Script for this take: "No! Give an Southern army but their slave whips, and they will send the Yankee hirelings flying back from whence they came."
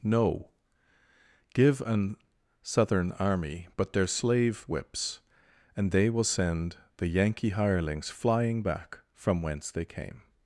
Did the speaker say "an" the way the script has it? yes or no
yes